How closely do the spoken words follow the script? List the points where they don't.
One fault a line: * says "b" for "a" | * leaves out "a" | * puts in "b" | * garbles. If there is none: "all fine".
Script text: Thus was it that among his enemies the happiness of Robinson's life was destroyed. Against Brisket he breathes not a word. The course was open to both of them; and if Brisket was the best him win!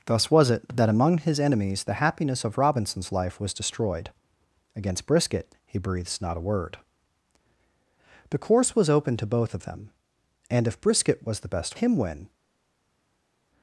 all fine